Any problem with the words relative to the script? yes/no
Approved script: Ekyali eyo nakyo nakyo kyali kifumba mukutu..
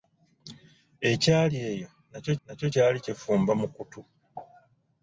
no